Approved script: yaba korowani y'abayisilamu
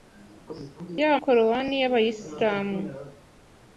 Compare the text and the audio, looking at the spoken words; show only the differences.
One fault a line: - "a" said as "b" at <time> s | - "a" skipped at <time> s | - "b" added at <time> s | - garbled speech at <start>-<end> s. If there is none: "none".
none